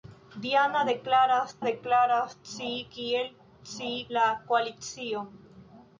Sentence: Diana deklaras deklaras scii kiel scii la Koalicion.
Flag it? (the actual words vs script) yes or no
no